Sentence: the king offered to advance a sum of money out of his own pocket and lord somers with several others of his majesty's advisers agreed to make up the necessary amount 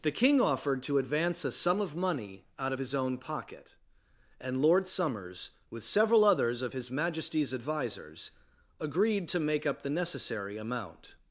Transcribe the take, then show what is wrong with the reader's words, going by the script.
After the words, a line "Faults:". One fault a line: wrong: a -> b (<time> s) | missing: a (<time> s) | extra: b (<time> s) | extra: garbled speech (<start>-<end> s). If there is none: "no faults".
the king offered to advance a sum of money out of his own pocket and lord somers with several others of his majesty's advisers agreed to make up the necessary amount
Faults:
no faults